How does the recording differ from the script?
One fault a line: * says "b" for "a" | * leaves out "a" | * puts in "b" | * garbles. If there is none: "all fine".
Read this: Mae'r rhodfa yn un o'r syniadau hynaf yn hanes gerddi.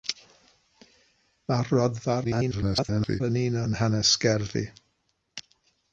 * garbles
* leaves out "o'r syniadau hynaf"